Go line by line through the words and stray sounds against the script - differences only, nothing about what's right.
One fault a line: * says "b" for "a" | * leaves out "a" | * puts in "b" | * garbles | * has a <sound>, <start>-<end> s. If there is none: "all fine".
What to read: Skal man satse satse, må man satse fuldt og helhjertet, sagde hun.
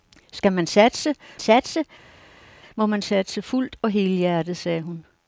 all fine